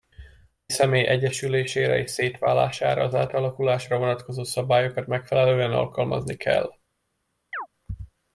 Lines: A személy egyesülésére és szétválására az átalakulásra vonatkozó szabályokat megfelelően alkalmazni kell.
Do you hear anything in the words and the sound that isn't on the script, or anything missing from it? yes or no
yes